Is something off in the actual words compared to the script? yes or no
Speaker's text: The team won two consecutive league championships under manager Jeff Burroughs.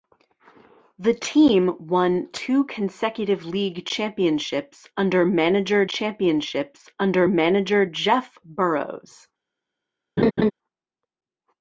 yes